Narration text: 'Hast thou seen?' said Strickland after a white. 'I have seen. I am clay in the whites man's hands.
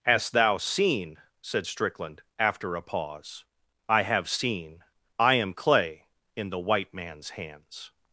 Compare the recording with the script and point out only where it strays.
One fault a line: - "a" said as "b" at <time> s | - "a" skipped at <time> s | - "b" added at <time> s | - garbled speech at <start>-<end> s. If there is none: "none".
- "white" said as "pause" at 2.8 s
- "whites" said as "white" at 6.6 s